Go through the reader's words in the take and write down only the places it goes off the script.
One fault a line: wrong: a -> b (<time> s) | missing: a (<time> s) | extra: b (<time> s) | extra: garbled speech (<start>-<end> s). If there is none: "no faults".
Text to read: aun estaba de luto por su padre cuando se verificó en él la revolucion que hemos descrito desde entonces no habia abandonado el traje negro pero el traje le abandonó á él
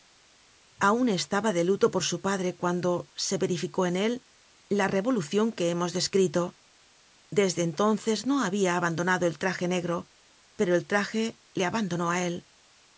no faults